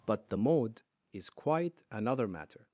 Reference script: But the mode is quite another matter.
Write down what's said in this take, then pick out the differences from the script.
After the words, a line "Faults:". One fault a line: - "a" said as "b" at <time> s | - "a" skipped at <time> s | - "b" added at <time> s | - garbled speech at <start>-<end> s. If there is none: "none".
But the mode is quite another matter.
Faults:
none